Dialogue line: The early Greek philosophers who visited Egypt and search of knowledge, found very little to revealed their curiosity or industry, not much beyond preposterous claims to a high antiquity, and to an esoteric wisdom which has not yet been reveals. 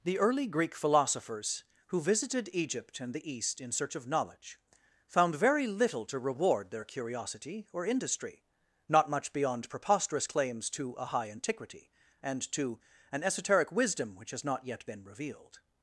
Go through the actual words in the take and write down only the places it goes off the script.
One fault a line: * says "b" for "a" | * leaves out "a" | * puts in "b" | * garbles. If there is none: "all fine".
* puts in "the East in"
* says "reward" for "revealed"
* says "revealed" for "reveals"